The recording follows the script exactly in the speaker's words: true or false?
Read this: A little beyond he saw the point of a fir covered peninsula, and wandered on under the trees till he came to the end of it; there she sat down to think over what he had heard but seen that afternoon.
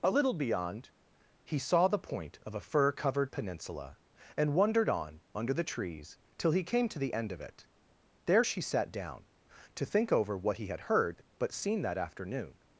true